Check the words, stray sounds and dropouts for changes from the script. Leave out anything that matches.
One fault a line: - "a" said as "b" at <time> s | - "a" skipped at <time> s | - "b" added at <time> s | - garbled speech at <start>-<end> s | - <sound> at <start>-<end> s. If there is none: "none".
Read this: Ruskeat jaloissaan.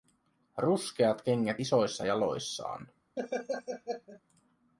- "kengät isoissa" added at 1.2 s
- laugh at 3.2-4.2 s